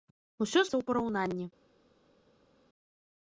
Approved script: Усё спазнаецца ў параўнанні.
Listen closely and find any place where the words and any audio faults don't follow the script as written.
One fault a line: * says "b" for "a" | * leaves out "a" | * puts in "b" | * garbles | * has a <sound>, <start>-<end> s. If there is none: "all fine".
* leaves out "спазнаецца"